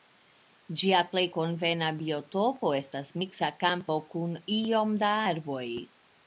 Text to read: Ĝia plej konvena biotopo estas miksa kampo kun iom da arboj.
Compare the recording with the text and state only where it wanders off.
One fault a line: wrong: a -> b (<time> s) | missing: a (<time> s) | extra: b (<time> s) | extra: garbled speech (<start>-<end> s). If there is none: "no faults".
no faults